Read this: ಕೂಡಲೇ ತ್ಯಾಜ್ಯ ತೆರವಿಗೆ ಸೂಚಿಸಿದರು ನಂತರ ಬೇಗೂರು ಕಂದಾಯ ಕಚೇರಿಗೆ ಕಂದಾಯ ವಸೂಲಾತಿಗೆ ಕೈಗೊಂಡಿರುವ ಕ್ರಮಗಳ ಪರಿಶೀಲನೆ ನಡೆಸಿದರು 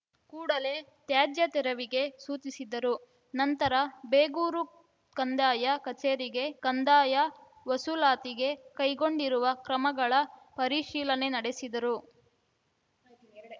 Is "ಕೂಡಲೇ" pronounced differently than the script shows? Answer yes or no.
no